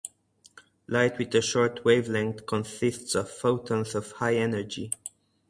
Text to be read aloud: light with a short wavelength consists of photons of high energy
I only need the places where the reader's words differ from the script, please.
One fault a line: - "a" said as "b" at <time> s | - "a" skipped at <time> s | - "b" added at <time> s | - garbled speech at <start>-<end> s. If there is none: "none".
none